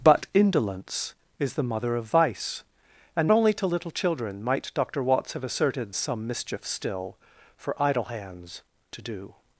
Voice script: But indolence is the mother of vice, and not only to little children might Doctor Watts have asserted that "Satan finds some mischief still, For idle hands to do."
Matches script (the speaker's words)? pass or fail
fail